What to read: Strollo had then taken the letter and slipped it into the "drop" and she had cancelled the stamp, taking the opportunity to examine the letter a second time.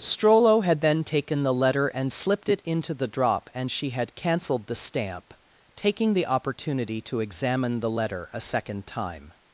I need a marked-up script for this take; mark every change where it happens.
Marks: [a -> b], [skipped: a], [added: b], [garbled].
Strollo had then taken the letter and slipped it into the "drop" and she had cancelled the stamp, taking the opportunity to examine the letter a second time.